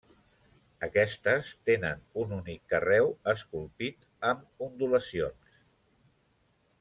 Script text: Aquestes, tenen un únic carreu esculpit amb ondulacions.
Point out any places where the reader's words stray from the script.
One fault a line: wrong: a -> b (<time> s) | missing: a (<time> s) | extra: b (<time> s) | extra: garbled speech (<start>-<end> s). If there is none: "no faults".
no faults